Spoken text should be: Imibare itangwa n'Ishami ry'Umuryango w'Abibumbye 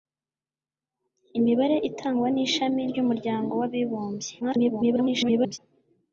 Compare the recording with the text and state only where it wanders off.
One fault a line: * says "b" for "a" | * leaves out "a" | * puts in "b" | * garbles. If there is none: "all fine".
* garbles